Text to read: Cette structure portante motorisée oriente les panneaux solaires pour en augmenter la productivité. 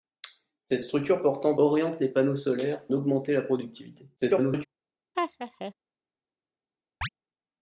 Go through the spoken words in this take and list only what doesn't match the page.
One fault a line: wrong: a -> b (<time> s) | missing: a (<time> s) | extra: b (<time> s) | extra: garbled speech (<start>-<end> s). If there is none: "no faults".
missing: motorisée (1.6 s)
missing: pour en (2.9 s)
extra: garbled speech (4.2-4.7 s)